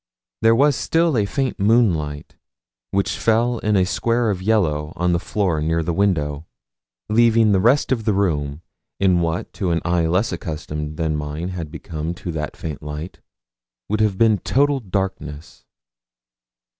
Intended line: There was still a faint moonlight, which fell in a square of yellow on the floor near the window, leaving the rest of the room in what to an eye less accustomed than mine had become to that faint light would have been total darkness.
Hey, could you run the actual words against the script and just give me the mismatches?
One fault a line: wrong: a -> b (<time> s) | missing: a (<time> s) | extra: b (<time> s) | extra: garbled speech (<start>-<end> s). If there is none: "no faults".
no faults